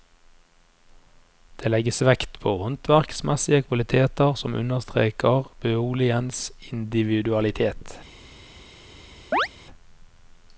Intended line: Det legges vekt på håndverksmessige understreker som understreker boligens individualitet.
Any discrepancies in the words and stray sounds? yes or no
yes